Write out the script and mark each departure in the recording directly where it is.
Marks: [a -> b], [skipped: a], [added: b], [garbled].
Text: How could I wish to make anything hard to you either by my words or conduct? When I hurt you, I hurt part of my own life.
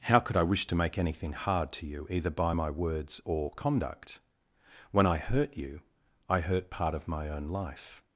How could I wish to make anything hard to you either by my words or conduct? When I hurt you, I hurt part of my own life.